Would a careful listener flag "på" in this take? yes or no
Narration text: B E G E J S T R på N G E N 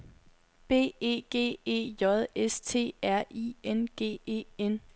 yes